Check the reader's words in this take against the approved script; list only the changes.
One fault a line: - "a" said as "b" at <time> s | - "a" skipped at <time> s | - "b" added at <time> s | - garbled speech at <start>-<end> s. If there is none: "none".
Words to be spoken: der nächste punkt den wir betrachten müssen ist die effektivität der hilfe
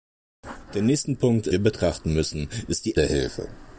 - "den" skipped at 1.5 s
- "effektivität" skipped at 3.0 s